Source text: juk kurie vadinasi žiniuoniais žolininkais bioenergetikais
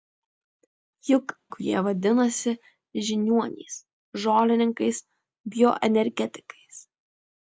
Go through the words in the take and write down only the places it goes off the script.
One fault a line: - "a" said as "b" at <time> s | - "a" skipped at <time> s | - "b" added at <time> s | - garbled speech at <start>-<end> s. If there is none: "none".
none